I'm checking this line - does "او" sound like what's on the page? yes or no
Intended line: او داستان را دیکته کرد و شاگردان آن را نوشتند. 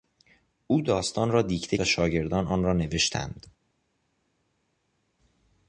yes